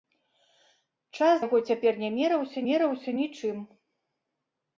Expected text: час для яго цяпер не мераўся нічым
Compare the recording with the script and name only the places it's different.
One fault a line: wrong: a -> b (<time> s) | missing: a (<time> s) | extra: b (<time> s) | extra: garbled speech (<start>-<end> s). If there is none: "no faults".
missing: для (1.4 s)
extra: мераўся (2.7 s)